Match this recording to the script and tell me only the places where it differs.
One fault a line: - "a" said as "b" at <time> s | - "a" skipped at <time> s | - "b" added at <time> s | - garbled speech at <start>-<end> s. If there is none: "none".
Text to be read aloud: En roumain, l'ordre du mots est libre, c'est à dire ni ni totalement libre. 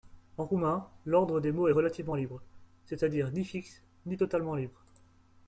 - "du" said as "des" at 1.4 s
- "relativement" added at 1.7 s
- "fixe" added at 3.4 s